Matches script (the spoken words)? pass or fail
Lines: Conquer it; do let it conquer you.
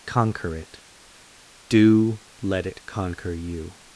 pass